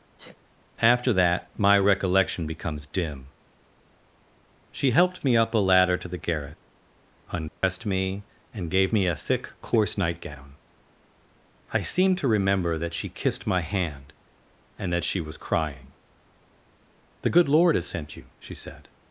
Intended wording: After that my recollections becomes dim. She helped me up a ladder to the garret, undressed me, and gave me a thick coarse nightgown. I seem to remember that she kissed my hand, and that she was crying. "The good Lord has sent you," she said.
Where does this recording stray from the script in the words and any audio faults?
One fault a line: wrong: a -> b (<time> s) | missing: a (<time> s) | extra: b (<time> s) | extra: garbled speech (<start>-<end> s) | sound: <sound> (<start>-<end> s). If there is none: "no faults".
sound: sniff (0.2-0.4 s)
wrong: recollections -> recollection (1.8 s)
sound: dropout (7.5-7.6 s)